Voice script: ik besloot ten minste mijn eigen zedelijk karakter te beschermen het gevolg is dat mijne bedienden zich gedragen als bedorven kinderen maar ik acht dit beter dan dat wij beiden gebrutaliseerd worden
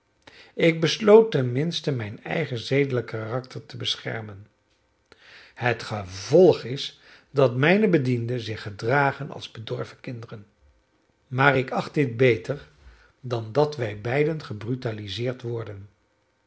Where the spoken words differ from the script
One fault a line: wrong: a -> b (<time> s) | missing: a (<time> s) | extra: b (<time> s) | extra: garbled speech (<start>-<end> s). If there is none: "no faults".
no faults